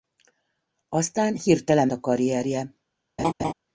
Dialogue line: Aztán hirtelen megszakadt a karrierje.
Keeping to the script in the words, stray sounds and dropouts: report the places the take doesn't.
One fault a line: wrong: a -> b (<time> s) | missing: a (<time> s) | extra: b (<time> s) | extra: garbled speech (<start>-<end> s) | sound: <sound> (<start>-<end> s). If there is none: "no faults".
missing: megszakadt (1.9 s)
sound: laugh (3.2-3.5 s)